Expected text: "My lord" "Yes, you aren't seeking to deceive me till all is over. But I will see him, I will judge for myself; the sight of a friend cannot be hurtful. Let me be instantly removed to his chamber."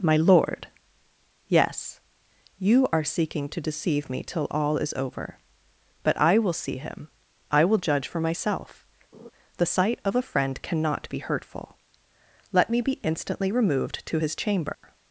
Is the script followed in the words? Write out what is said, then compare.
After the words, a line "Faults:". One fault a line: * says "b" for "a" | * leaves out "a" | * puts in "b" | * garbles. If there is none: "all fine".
"My lord" "Yes, you are seeking to deceive me till all is over. But I will see him, I will judge for myself; the sight of a friend cannot be hurtful. Let me be instantly removed to his chamber."
Faults:
* says "are" for "aren't"